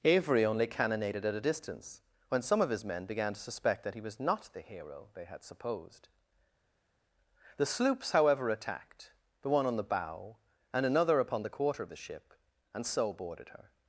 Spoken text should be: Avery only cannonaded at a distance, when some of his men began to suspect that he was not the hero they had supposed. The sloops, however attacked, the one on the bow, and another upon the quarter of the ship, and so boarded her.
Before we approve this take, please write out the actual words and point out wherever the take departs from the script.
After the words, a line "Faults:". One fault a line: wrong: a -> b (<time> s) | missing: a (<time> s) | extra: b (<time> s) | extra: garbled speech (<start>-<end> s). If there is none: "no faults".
Avery only cannonaded at a distance, when some of his men began to suspect that he was not the hero they had supposed. The sloops, however attacked, the one on the bow, and another upon the quarter of the ship, and so boarded her.
Faults:
no faults